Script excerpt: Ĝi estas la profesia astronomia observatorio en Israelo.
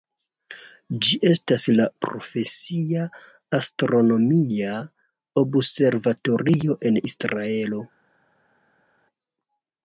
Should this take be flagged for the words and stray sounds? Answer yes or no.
no